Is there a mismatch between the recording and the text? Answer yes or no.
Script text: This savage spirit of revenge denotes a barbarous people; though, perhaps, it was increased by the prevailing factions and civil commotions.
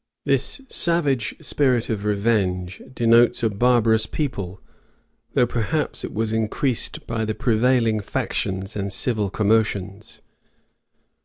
no